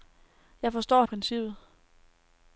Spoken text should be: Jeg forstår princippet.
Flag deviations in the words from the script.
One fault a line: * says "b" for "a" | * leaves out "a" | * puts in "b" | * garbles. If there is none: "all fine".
all fine